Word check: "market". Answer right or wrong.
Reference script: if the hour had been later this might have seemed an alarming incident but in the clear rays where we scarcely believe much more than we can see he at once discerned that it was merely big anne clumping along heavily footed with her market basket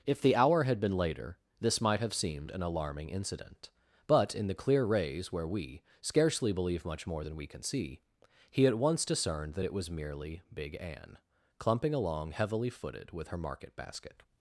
right